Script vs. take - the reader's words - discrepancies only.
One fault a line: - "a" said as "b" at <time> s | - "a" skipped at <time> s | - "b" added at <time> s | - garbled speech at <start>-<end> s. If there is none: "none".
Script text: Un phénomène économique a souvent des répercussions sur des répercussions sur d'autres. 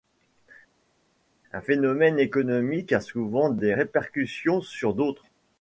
- "des répercussions sur" skipped at 4.9 s